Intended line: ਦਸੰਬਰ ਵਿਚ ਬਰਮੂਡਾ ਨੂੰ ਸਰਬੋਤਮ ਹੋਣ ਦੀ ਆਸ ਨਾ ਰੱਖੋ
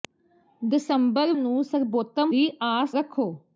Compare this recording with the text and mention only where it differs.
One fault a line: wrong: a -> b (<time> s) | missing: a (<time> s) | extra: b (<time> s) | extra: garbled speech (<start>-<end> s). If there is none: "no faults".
missing: ਵਿਚ ਬਰਮੂਡਾ (1.3 s)
missing: ਹੋਣ (2.3 s)
missing: ਨਾ (3.0 s)